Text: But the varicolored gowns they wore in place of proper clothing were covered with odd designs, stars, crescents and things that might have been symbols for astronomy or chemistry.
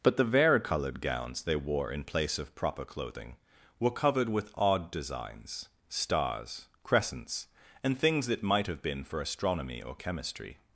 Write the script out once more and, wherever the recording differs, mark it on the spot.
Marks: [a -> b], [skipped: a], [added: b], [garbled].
But the varicolored gowns they wore in place of proper clothing were covered with odd designs, stars, crescents and things that might have been [skipped: symbols] for astronomy or chemistry.